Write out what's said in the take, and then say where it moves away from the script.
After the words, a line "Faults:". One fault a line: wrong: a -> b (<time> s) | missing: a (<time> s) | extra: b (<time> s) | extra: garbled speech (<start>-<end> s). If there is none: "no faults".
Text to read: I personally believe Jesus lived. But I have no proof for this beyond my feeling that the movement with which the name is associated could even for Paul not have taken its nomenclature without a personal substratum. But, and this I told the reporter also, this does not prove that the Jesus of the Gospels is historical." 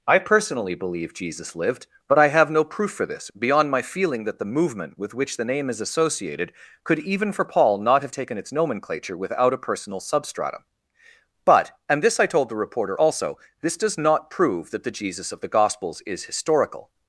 I personally believe Jesus lived. But I have no proof for this beyond my feeling that the movement with which the name is associated could even for Paul not have taken its nomenclature without a personal substratum. But, and this I told the reporter also, this does not prove that the Jesus of the Gospels is historical."
Faults:
no faults